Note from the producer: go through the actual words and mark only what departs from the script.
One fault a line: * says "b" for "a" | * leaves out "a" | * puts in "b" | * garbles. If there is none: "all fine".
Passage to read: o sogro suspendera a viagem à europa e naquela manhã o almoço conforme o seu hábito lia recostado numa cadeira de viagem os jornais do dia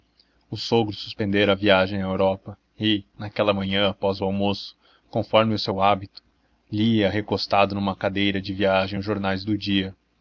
* puts in "após"